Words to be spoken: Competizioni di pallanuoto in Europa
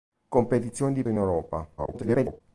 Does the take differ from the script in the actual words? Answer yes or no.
yes